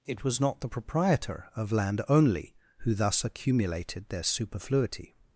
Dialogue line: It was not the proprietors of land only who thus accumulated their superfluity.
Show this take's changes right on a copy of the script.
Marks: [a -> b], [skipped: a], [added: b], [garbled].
It was not the [proprietors -> proprietor] of land only who thus accumulated their superfluity.